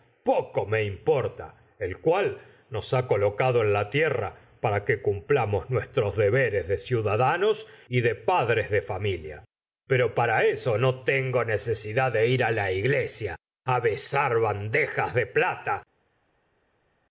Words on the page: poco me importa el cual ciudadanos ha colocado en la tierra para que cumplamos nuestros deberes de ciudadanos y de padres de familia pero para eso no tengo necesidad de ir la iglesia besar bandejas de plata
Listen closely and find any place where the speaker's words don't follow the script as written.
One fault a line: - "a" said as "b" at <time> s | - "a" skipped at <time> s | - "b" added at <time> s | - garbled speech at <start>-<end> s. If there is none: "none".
- "ciudadanos" said as "nos" at 2.7 s